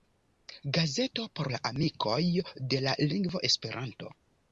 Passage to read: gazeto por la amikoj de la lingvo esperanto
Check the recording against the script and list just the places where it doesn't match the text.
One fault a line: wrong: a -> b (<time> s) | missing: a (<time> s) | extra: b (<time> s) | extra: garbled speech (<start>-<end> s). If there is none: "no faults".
no faults